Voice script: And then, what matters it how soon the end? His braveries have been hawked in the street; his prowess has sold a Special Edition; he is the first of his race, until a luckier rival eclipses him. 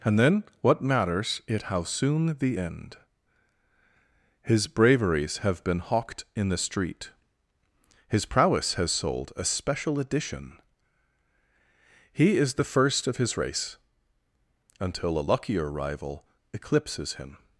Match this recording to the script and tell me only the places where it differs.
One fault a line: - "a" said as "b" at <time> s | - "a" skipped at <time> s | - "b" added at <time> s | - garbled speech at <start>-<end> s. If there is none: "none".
none